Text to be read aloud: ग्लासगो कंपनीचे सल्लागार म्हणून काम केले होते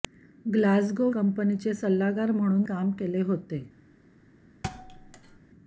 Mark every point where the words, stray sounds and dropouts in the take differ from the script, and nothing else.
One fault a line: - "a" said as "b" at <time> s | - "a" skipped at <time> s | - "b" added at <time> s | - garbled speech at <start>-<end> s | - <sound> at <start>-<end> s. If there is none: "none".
- thud at 4.6-5.4 s